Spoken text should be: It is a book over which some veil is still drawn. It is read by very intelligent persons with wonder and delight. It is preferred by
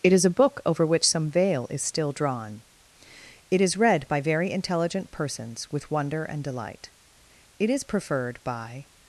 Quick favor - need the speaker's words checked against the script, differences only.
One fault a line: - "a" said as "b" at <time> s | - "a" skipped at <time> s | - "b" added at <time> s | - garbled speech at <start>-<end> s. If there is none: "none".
none